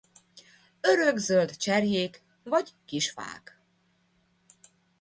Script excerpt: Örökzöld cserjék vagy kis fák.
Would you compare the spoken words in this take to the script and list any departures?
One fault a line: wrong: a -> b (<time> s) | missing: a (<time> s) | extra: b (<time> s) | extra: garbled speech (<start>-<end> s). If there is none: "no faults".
no faults